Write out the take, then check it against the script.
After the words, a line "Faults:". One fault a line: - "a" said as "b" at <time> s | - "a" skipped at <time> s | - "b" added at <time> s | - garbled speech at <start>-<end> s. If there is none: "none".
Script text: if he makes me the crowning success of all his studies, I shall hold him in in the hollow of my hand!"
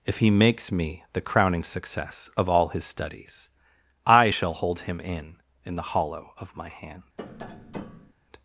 if he makes me the crowning success of all his studies, I shall hold him in in the hollow of my hand!"
Faults:
none